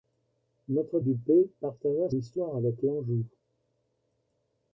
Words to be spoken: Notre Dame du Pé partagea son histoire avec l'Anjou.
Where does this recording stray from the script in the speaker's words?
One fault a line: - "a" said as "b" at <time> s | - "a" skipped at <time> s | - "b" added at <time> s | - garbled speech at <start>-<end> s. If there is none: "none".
- "Dame" skipped at 1.0 s
- "son" skipped at 2.1 s